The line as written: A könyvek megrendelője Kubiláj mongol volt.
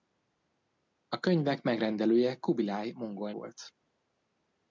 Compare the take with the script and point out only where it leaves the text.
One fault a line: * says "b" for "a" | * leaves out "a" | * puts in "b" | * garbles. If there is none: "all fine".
all fine